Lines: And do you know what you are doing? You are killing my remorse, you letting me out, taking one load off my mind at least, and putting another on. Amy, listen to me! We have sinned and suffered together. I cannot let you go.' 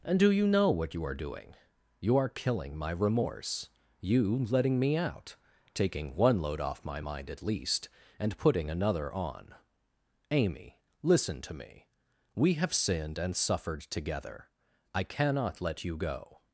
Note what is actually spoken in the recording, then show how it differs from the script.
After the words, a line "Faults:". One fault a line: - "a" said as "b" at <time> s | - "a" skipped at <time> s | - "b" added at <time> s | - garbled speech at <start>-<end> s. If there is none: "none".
And do you know what you are doing? You are killing my remorse, you letting me out, taking one load off my mind at least, and putting another on. Amy, listen to me! We have sinned and suffered together. I cannot let you go.'
Faults:
none